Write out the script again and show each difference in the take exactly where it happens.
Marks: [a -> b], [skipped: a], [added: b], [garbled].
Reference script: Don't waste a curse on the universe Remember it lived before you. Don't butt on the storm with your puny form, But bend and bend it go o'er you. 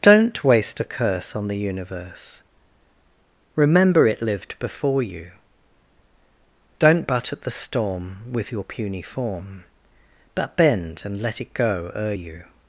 Don't waste a curse on the universe Remember it lived before you. Don't butt [on -> at] the storm with your puny form, But bend and [bend -> let] it go o'er you.